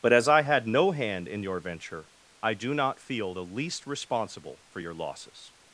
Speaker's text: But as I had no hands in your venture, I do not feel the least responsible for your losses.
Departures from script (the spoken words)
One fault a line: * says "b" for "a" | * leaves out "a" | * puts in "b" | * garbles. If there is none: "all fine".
* says "hand" for "hands"